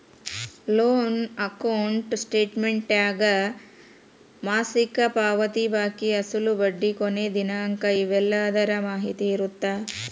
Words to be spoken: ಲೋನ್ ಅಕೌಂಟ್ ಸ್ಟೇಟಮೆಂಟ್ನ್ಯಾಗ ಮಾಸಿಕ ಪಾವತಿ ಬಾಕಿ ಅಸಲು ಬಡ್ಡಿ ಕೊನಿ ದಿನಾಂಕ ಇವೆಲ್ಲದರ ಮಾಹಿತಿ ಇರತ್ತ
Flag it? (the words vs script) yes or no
no